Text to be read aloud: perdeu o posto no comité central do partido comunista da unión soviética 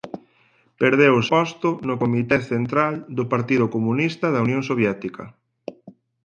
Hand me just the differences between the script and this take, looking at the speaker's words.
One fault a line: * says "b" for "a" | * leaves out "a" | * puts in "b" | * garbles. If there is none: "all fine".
all fine